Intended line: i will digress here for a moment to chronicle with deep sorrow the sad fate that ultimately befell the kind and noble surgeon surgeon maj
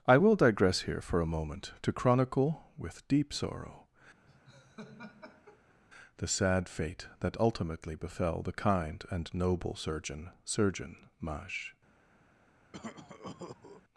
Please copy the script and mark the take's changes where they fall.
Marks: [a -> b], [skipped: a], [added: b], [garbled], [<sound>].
i will digress here for a moment to chronicle with deep sorrow [laugh] the sad fate that ultimately befell the kind and noble surgeon surgeon maj [cough]